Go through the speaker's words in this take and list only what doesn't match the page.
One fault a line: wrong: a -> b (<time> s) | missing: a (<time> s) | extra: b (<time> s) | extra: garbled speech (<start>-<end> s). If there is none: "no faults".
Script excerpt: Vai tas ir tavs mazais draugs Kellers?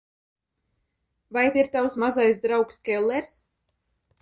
missing: tas (1.4 s)